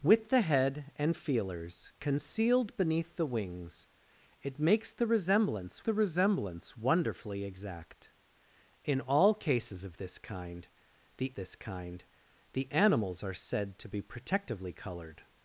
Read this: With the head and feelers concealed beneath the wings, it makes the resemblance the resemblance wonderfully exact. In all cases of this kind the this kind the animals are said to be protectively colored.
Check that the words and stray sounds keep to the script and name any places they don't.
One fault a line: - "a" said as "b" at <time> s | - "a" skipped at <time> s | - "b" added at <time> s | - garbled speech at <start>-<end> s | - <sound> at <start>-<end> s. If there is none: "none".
none